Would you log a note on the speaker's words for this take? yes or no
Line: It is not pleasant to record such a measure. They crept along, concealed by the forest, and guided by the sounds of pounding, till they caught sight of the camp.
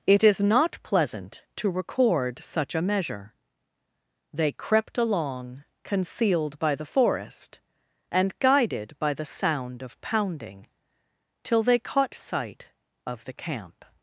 yes